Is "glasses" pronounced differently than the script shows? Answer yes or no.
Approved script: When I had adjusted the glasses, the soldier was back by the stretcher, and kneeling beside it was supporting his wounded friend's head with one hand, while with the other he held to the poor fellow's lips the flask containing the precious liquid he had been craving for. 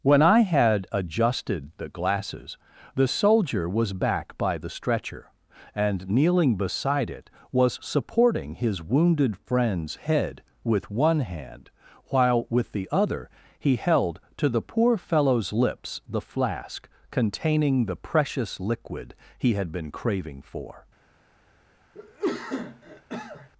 no